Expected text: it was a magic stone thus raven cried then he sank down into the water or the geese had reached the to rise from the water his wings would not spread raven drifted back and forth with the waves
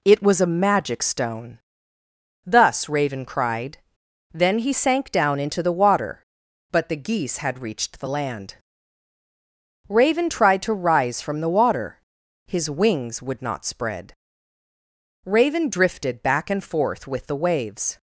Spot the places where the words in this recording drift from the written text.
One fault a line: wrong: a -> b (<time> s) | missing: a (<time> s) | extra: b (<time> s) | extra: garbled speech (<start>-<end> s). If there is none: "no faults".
wrong: or -> but (6.7 s)
extra: land raven tried (8.1 s)